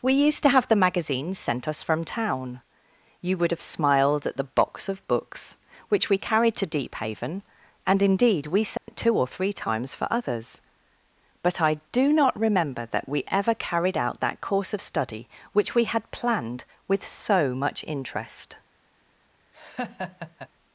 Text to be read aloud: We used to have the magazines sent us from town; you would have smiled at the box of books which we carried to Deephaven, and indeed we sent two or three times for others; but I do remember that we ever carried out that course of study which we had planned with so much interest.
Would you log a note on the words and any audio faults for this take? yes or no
yes